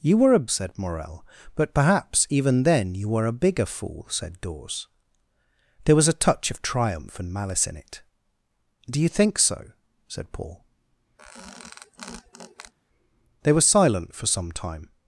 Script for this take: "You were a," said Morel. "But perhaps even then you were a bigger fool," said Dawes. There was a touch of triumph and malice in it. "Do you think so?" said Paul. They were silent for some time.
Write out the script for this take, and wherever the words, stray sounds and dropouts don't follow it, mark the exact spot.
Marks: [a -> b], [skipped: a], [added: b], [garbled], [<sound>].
"You were a," said Morel. "But perhaps even then you were a bigger fool," said Dawes. There was a touch of triumph and malice in it. "Do you think so?" said Paul. [squeak] They were silent for some time.